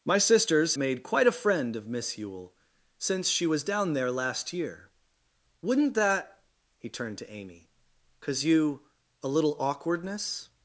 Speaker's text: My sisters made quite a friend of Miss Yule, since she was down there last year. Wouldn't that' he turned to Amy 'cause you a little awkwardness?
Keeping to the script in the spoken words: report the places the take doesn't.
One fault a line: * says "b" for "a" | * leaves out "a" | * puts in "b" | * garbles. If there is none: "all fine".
all fine